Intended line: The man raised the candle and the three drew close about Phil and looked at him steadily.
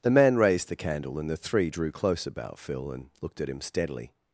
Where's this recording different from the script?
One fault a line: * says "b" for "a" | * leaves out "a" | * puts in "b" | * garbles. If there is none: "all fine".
all fine